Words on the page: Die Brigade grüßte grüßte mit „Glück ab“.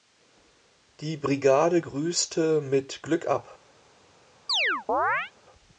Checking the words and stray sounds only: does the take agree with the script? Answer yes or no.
no